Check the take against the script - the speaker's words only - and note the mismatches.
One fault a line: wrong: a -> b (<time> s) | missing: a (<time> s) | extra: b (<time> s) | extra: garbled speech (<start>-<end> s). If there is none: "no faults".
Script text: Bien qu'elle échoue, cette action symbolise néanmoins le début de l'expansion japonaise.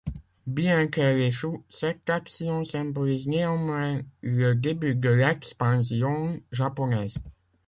no faults